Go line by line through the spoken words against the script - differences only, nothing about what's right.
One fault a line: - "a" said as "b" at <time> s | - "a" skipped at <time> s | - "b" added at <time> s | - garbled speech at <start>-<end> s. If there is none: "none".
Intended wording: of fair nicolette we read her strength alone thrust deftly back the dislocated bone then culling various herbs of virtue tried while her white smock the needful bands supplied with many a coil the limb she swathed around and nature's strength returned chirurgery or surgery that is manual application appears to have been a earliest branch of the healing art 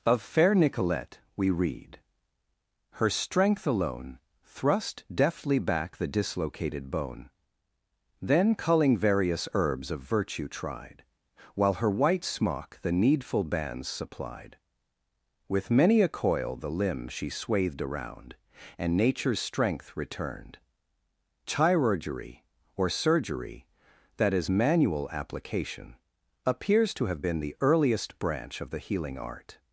- "a" said as "the" at 27.4 s